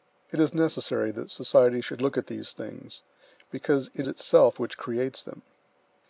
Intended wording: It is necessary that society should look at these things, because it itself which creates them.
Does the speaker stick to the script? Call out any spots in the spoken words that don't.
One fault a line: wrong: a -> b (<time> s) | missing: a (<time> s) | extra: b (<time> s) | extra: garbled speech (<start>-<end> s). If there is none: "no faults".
no faults